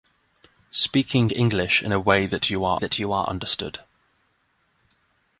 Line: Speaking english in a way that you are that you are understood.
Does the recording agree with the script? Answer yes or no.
yes